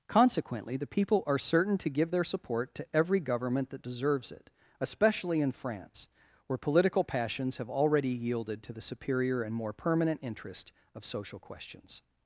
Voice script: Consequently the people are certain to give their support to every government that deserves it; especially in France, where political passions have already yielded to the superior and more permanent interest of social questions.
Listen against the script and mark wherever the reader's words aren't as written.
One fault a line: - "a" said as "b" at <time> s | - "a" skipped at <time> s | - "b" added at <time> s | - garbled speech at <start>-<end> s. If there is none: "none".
none